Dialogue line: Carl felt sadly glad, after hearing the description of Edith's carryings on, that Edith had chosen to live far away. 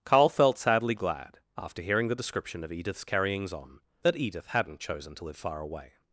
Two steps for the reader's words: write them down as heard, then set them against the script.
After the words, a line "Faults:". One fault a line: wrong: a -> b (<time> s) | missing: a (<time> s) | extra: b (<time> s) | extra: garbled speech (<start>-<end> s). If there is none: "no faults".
Carl felt sadly glad, after hearing the description of Edith's carryings on, that Edith hadn't chosen to live far away.
Faults:
wrong: had -> hadn't (4.5 s)